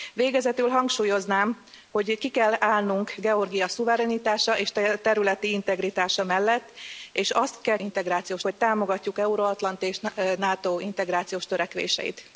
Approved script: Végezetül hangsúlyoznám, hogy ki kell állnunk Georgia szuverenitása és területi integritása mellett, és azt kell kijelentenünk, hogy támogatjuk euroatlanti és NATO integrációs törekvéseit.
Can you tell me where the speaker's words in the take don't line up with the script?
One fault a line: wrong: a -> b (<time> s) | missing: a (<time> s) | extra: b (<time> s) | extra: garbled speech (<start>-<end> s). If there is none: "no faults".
wrong: kijelentenünk -> integrációs (7.8 s)